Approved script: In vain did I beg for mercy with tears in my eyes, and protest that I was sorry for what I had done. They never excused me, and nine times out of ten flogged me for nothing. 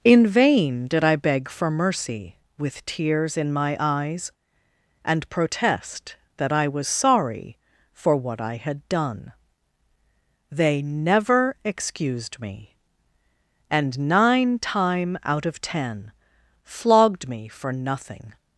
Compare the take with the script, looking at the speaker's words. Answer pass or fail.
fail